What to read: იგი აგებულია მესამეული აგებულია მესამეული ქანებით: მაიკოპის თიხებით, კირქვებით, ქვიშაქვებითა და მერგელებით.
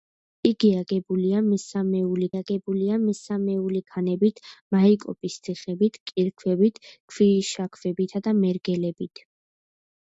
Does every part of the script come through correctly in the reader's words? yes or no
yes